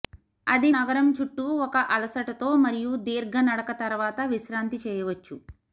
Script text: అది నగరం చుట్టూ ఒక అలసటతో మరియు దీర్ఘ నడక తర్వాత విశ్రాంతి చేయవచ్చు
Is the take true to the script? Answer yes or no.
yes